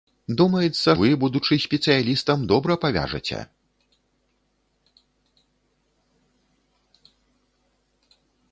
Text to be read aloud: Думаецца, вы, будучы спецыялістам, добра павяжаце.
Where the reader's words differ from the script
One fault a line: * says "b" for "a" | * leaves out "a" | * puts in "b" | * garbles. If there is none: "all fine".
all fine